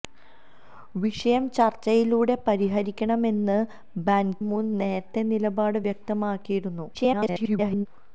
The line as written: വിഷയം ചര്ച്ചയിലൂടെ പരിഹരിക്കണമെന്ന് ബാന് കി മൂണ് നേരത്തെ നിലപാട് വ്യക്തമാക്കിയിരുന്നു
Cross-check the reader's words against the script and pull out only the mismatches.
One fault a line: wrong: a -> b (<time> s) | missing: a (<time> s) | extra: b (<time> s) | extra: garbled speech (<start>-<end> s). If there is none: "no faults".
missing: കി (4.3 s)
extra: garbled speech (6.9-7.9 s)